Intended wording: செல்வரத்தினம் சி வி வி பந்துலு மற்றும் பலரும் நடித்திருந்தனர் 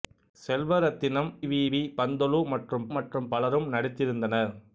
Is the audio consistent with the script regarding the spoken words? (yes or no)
no